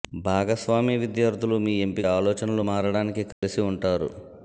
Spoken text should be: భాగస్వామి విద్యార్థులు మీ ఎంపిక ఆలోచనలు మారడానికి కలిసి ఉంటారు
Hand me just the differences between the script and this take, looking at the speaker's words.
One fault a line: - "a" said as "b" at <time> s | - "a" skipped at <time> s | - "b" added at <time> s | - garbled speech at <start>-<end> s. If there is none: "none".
none